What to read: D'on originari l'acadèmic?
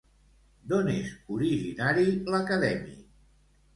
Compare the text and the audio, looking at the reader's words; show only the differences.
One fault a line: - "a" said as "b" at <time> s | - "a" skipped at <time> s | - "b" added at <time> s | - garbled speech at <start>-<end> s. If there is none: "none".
- "és" added at 0.9 s